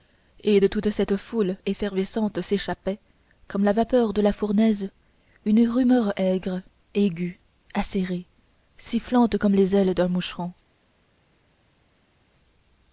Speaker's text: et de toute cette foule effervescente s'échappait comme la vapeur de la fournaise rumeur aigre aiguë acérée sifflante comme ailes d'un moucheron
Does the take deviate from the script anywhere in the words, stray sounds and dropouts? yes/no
yes